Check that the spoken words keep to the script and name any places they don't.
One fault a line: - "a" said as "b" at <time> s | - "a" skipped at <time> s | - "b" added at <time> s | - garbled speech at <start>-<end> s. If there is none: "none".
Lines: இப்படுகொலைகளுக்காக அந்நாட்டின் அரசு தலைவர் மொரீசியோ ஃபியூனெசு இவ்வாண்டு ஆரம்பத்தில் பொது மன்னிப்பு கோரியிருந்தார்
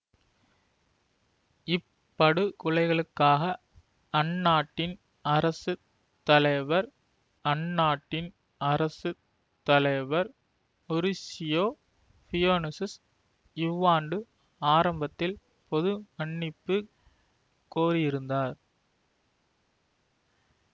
- "அந்நாட்டின் அரசு தலைவர்" added at 7.5 s